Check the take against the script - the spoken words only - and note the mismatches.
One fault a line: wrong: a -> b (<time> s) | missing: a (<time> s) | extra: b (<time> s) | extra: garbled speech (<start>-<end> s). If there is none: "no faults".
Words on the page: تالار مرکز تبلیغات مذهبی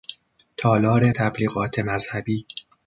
missing: مرکز (1.1 s)